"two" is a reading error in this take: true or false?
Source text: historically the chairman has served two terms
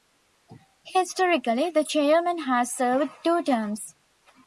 false